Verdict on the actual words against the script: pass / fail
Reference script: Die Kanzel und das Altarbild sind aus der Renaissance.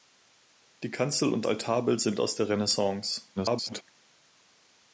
fail